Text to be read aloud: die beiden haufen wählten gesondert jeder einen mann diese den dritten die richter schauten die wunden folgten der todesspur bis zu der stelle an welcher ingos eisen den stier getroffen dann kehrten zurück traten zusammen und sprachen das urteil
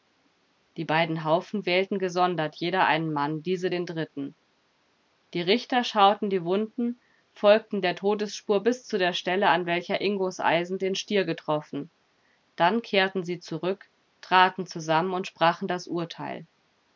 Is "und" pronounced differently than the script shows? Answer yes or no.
no